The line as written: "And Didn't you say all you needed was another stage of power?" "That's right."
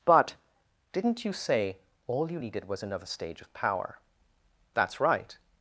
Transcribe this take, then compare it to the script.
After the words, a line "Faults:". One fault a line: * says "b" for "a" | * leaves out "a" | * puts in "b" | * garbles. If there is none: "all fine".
"But Didn't you say all you needed was another stage of power?" "That's right."
Faults:
* says "But" for "And"